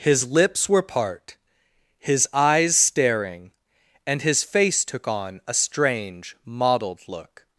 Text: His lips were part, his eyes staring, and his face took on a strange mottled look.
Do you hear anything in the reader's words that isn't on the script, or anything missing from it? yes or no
no